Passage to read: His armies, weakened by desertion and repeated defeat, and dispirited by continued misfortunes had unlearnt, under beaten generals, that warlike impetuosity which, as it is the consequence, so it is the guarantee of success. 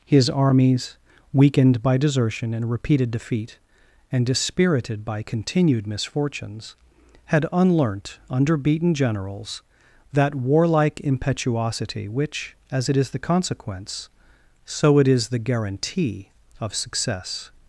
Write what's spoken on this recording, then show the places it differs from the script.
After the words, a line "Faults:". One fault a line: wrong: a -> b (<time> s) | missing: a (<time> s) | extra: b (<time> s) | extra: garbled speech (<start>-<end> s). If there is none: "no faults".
His armies, weakened by desertion and repeated defeat, and dispirited by continued misfortunes had unlearnt, under beaten generals, that warlike impetuosity which, as it is the consequence, so it is the guarantee of success.
Faults:
no faults